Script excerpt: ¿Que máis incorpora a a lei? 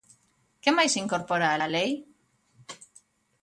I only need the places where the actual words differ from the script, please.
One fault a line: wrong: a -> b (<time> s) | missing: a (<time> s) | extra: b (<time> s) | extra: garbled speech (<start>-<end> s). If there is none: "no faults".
no faults